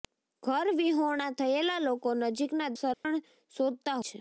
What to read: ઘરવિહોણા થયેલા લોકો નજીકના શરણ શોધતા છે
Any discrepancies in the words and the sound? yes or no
yes